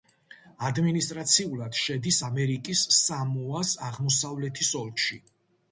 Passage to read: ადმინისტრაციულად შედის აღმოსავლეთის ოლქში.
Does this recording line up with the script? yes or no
no